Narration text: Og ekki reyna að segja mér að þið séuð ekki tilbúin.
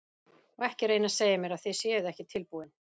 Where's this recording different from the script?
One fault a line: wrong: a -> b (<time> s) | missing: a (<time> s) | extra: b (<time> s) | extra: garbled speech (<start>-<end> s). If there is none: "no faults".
no faults